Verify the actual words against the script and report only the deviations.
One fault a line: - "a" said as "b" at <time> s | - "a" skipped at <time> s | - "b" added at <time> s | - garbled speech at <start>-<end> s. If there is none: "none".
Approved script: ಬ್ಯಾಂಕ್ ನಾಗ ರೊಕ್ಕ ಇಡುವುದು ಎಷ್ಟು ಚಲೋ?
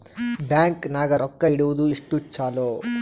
none